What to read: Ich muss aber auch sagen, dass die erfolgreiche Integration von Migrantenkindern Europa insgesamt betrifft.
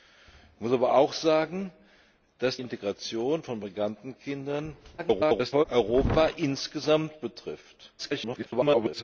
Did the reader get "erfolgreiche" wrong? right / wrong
wrong